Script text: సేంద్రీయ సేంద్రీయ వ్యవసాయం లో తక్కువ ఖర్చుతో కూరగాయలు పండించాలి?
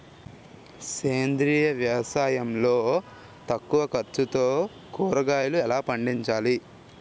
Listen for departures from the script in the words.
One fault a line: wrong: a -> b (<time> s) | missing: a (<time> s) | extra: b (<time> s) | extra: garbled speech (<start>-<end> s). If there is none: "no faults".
missing: సేంద్రీయ (1.6 s)
extra: ఎలా (5.6 s)